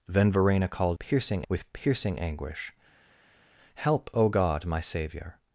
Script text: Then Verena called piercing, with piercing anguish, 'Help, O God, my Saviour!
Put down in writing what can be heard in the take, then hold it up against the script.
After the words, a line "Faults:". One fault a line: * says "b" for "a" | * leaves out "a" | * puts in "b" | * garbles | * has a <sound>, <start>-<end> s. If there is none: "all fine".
Then Verena called piercing, with piercing anguish, 'Help, O God, my Saviour!
Faults:
all fine